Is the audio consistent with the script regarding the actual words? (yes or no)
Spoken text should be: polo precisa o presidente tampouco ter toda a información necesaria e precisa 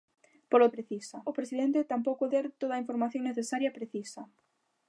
yes